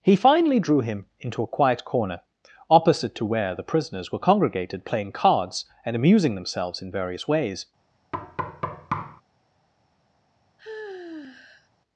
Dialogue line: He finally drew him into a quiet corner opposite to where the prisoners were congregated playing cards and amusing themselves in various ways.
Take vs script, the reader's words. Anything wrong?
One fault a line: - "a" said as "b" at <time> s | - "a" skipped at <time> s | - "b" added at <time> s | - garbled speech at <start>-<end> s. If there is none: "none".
none